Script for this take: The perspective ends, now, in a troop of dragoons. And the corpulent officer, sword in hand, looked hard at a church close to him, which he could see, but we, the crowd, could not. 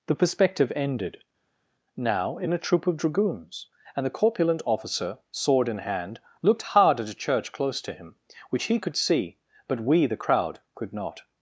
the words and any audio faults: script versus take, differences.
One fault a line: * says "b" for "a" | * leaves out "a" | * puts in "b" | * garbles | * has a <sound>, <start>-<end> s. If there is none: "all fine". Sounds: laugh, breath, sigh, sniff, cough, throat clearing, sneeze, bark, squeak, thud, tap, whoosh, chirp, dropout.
* says "ended" for "ends"